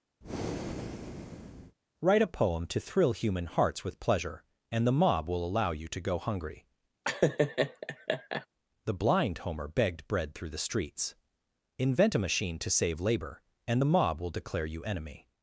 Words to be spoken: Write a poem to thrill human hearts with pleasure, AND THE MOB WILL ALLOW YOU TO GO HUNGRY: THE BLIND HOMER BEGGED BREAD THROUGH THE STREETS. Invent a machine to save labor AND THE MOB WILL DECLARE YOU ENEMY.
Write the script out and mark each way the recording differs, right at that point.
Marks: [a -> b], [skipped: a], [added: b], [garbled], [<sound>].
[breath] Write a poem to thrill human hearts with pleasure, AND THE MOB WILL ALLOW YOU TO GO HUNGRY: [laugh] THE BLIND HOMER BEGGED BREAD THROUGH THE STREETS. Invent a machine to save labor AND THE MOB WILL DECLARE YOU ENEMY.